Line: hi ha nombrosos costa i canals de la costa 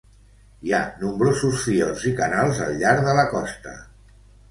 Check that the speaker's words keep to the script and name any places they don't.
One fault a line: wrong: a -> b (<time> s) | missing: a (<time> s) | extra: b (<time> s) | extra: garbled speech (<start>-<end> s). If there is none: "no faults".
wrong: costa -> fiords (1.7 s)
extra: al llarg (2.7 s)